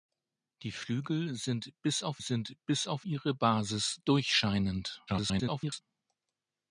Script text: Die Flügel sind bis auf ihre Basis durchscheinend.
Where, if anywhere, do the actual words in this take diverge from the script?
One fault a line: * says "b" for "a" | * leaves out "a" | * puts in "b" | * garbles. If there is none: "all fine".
* puts in "sind bis auf"
* garbles